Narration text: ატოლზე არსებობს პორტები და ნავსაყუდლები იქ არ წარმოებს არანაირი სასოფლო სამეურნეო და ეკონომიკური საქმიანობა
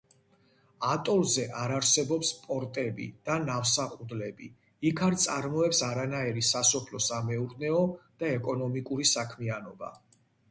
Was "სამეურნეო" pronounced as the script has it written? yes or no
yes